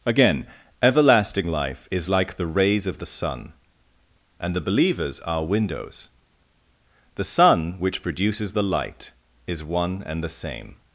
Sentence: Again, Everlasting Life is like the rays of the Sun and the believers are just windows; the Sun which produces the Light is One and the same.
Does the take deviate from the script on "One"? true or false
false